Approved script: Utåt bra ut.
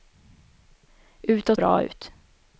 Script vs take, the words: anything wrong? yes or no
no